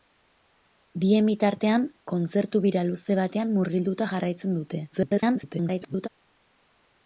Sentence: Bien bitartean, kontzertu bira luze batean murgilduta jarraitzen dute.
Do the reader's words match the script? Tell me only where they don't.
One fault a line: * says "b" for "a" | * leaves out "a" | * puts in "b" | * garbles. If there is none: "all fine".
* garbles